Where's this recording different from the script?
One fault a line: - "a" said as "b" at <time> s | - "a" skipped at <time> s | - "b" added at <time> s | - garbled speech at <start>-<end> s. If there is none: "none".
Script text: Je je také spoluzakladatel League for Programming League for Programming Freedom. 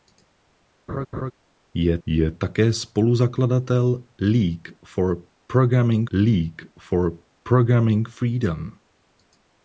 none